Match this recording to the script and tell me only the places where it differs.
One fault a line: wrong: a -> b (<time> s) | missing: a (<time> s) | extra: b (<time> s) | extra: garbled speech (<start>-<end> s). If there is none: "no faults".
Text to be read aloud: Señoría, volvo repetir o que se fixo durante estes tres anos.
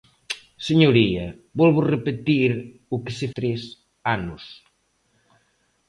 missing: fixo durante estes (3.3 s)